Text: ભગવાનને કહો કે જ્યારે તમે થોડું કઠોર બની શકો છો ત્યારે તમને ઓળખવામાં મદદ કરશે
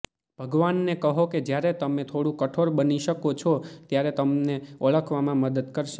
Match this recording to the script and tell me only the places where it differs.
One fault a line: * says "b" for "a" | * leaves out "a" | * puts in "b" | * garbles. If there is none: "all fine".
all fine